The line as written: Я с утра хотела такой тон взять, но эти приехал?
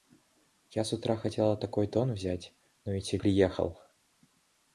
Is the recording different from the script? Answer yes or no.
no